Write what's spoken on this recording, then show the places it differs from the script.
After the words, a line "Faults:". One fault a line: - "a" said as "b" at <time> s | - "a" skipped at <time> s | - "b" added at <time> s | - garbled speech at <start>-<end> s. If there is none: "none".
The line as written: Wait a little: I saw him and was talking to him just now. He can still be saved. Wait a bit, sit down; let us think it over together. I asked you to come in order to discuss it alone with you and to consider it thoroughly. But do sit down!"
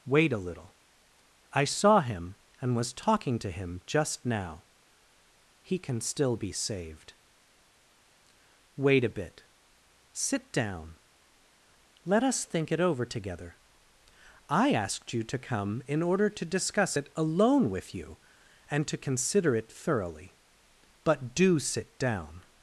Wait a little: I saw him and was talking to him just now. He can still be saved. Wait a bit, sit down; let us think it over together. I asked you to come in order to discuss it alone with you and to consider it thoroughly. But do sit down!"
Faults:
none